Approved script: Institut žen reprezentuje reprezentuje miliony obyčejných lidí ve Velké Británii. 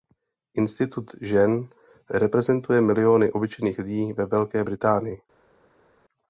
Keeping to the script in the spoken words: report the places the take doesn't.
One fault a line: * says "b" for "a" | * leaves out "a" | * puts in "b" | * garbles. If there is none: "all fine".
* leaves out "reprezentuje"